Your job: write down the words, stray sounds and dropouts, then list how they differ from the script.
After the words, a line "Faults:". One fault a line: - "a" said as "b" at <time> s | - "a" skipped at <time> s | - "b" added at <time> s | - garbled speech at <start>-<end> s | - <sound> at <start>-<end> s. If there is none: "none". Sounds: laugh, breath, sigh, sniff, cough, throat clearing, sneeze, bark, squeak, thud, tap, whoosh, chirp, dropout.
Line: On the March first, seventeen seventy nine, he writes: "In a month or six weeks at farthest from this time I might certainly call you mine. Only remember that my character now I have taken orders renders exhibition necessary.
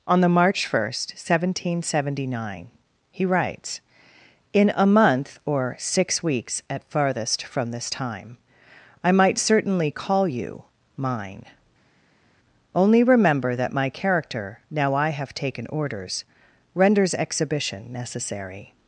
On the March first, seventeen seventy nine, he writes: "In a month or six weeks at farthest from this time I might certainly call you mine. Only remember that my character now I have taken orders renders exhibition necessary.
Faults:
none